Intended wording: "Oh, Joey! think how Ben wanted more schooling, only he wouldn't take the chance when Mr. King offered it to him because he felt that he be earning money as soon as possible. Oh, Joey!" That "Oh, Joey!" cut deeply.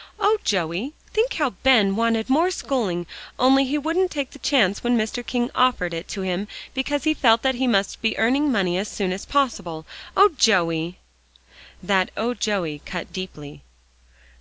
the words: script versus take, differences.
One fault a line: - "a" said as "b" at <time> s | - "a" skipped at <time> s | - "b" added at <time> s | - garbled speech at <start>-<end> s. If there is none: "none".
- "must" added at 7.7 s